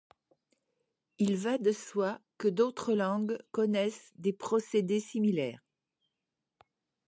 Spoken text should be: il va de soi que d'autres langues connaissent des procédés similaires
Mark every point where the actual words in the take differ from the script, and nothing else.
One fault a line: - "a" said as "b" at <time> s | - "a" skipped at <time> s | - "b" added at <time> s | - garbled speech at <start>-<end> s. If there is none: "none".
none